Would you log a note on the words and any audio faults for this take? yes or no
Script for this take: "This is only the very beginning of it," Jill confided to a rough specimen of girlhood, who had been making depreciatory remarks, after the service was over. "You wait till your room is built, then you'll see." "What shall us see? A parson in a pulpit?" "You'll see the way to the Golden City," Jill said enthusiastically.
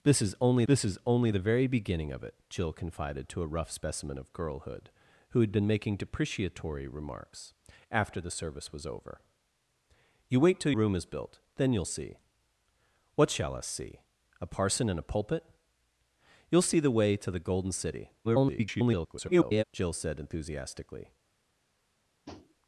yes